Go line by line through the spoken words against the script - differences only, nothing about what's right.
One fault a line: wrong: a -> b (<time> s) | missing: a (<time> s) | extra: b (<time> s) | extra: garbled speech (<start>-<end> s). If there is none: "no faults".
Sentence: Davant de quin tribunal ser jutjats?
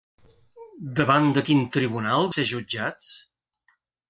no faults